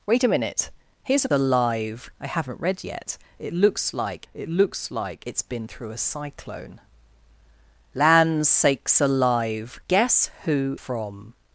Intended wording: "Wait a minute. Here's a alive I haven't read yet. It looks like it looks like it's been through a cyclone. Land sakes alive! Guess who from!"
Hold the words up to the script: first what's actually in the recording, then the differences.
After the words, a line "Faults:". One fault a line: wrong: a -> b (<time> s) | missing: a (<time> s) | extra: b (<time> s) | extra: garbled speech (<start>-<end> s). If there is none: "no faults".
"Wait a minute. Here's a alive I haven't read yet. It looks like it looks like it's been through a cyclone. Land sakes alive! Guess who from!"
Faults:
no faults